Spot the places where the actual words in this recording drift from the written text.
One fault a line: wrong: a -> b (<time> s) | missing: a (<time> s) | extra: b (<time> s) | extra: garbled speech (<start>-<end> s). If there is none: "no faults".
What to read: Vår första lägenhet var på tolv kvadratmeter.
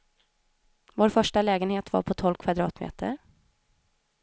no faults